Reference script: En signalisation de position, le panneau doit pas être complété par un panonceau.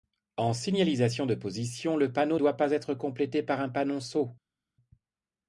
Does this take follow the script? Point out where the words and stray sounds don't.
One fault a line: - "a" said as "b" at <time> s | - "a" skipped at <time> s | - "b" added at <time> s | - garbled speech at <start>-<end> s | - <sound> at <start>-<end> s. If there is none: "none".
none